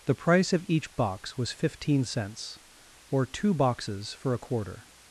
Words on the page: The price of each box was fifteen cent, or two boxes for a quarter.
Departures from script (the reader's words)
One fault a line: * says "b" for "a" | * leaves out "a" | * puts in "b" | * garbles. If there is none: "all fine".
* says "cents" for "cent"